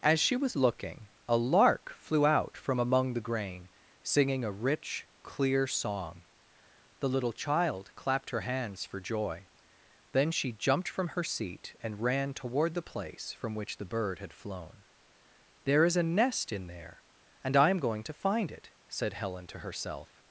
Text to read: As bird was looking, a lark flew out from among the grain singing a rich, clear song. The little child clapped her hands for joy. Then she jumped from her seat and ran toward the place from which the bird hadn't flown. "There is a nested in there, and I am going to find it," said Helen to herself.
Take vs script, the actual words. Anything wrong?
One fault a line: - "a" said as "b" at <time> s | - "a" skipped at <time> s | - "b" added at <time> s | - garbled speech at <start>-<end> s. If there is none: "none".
- "bird" said as "she" at 0.2 s
- "hadn't" said as "had" at 14.2 s
- "nested" said as "nest" at 16.0 s